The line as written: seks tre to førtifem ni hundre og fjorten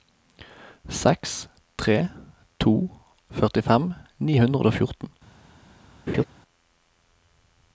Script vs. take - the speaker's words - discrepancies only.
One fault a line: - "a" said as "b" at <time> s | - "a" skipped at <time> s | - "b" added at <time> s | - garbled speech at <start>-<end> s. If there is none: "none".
none